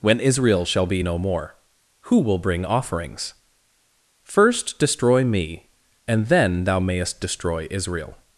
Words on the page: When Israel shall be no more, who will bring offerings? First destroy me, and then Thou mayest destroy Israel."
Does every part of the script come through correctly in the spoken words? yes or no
yes